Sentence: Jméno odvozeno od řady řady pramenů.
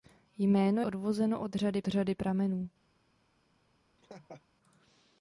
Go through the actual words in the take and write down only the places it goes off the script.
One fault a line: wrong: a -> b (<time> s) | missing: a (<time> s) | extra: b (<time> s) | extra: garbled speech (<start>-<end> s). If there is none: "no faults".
no faults